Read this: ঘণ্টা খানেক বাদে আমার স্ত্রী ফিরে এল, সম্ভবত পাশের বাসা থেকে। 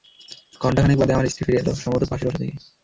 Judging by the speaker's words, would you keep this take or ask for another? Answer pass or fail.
pass